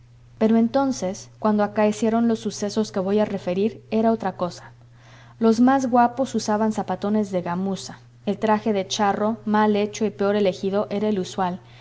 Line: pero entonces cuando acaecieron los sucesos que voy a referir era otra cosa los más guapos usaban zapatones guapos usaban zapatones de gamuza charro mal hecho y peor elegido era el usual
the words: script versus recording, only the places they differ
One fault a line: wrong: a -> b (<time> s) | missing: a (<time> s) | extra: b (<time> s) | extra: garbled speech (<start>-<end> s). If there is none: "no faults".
wrong: guapos usaban zapatones -> de gamuza el traje (7.3 s)
missing: gamuza (8.9 s)